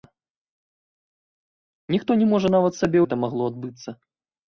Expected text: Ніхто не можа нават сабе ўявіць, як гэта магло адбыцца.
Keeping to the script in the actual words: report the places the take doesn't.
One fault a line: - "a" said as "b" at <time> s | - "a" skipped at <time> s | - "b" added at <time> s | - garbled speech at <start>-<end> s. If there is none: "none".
- "ўявіць як" skipped at 3.0 s